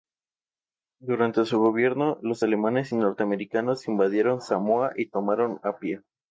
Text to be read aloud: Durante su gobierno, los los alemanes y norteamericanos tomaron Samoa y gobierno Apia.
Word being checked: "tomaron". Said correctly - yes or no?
no